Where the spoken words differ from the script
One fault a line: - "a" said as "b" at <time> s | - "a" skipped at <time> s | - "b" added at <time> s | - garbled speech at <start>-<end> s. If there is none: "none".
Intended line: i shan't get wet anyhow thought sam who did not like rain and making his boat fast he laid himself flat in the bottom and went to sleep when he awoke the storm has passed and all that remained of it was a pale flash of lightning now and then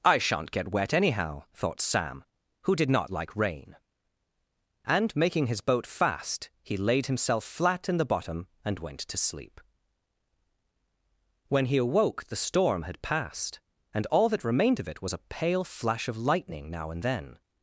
- "has" said as "had" at 12.8 s